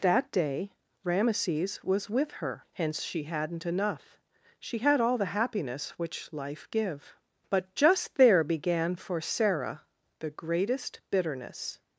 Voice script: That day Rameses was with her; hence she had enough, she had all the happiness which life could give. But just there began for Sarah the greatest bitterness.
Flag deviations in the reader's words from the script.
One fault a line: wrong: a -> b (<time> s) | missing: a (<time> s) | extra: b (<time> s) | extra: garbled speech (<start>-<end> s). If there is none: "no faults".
wrong: had -> hadn't (3.2 s)
missing: could (6.7 s)